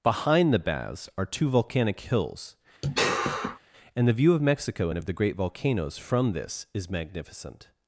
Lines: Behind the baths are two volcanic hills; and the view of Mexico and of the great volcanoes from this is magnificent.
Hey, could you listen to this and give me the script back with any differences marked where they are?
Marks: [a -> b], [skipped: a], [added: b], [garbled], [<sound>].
Behind the baths are two volcanic hills; [sigh] and the view of Mexico and of the great volcanoes from this is magnificent.